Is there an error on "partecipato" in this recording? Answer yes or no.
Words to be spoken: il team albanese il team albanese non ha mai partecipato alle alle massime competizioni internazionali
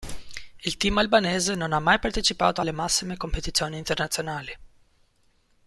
no